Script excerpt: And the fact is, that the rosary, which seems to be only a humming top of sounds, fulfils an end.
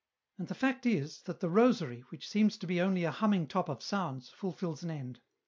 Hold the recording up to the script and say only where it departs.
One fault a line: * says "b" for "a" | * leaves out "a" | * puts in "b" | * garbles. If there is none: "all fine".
all fine